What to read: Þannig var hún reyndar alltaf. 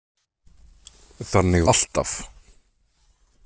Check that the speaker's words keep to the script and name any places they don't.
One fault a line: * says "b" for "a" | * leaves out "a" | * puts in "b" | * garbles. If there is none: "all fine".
* leaves out "var hún reyndar"